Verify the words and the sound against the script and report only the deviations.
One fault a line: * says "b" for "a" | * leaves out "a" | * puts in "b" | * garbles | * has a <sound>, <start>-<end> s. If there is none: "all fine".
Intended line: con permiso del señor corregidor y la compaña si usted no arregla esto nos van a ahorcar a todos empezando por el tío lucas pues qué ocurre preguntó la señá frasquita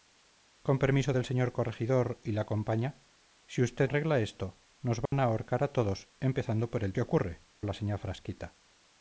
* leaves out "no"
* has a dropout, 5.1-5.1 s
* leaves out "tío lucas pues"
* leaves out "preguntó"